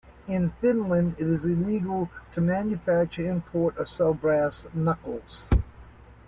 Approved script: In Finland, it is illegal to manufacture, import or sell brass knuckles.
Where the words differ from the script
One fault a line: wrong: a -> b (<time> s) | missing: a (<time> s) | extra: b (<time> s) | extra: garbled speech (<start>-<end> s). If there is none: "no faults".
no faults